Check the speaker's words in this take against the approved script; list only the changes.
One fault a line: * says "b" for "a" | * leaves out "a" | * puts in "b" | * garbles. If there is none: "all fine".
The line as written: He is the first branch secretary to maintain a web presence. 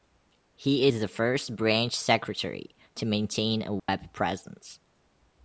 all fine